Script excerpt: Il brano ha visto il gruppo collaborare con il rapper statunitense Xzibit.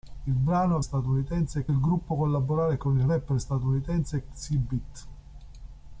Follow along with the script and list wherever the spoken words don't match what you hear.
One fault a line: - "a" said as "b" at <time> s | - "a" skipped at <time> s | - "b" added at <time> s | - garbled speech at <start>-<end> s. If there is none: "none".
- "visto" said as "statunitense" at 0.8 s